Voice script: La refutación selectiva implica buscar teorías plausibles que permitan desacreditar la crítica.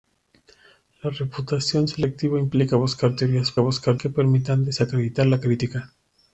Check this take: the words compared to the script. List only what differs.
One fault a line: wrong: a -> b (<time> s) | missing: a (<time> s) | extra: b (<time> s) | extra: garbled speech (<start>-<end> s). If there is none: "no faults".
wrong: plausibles -> buscar (3.6 s)